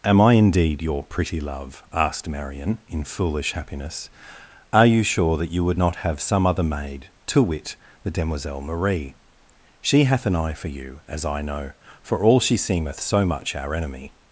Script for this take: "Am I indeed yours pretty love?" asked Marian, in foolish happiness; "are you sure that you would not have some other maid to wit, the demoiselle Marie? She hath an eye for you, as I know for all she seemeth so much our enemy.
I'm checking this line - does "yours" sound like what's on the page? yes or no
no